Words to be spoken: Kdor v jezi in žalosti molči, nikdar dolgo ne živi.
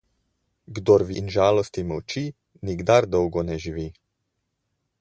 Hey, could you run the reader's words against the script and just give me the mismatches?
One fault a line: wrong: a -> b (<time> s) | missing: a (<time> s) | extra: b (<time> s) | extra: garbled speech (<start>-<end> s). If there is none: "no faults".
missing: jezi (1.1 s)